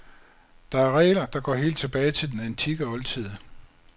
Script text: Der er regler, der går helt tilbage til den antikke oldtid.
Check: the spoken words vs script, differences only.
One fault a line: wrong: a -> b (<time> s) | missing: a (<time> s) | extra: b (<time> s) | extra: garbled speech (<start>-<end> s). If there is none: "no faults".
no faults